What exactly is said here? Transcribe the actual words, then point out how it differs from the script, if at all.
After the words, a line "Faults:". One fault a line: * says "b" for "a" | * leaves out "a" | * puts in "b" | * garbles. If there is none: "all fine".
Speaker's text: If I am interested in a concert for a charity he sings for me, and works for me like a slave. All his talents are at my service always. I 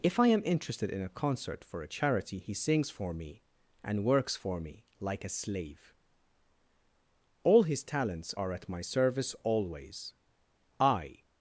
If I am interested in a concert for a charity he sings for me, and works for me like a slave. All his talents are at my service always. I
Faults:
all fine